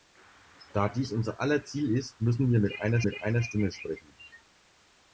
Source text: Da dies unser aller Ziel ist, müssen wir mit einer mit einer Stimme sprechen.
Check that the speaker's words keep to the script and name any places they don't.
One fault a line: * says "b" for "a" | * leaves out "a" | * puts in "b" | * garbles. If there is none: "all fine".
all fine